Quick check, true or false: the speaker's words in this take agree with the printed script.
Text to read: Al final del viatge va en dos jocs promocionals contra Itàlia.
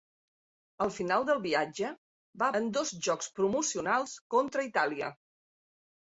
true